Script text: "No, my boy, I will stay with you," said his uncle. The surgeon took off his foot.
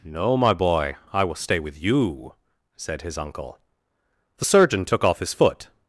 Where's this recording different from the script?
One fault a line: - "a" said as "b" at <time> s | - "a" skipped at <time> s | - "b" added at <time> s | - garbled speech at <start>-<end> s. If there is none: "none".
none